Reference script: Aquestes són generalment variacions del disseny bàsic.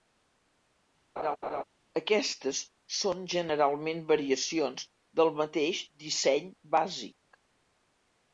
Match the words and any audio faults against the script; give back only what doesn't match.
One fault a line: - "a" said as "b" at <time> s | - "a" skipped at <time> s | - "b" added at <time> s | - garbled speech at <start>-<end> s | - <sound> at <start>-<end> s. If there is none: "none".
- laugh at 1.2-1.6 s
- "mateix" added at 5.4 s